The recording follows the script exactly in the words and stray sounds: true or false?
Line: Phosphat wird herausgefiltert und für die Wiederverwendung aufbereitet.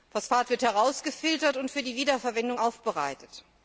true